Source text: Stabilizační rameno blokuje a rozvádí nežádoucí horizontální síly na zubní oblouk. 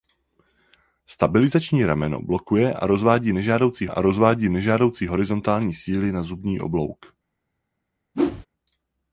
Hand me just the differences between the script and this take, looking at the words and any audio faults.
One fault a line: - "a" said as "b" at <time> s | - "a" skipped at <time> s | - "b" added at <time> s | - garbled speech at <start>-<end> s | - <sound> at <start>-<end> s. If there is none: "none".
- "a rozvádí nežádoucí" added at 3.9 s
- whoosh at 8.1-8.5 s